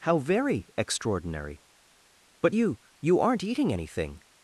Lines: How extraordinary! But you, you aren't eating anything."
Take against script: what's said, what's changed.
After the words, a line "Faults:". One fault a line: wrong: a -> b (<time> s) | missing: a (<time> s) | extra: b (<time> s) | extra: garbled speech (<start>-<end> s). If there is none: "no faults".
How very, extraordinary! But you, you aren't eating anything."
Faults:
extra: very (0.2 s)